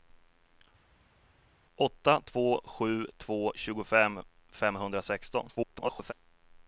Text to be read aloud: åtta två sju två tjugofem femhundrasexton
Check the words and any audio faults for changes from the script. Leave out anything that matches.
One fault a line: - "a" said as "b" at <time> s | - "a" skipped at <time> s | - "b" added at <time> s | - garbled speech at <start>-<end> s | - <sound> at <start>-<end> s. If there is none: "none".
- garbled speech at 5.6-6.1 s